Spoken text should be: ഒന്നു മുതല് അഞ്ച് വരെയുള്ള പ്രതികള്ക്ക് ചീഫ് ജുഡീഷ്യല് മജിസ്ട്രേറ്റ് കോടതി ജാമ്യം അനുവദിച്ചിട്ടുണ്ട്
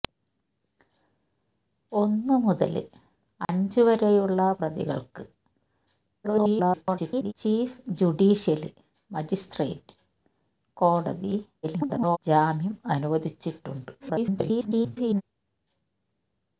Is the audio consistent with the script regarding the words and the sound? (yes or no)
no